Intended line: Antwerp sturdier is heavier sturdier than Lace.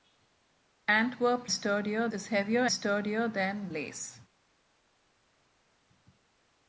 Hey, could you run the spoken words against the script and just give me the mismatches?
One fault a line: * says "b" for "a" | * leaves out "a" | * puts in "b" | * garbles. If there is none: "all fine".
all fine